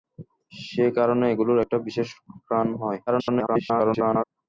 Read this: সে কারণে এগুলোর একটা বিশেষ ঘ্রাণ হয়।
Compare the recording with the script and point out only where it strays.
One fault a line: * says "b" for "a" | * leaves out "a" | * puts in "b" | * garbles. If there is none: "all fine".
* garbles